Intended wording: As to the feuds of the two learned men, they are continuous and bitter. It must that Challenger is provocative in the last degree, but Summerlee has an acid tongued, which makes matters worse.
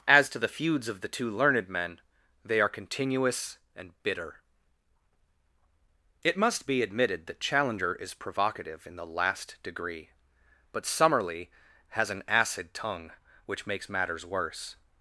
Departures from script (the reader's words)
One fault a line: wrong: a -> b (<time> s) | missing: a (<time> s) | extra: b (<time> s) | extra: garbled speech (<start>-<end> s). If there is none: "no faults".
extra: be admitted (6.7 s)
wrong: tongued -> tongue (12.7 s)